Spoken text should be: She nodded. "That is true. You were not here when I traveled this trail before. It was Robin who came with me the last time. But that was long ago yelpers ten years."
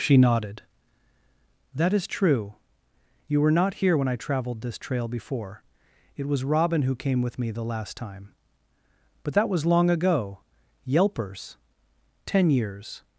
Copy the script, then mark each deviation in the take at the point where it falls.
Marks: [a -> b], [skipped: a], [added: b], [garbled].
She nodded. "That is true. You were not here when I traveled this trail before. It was Robin who came with me the last time. But that was long ago yelpers ten years."